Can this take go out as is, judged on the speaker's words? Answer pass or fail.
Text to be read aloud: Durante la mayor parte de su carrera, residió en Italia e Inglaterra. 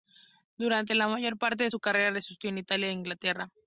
pass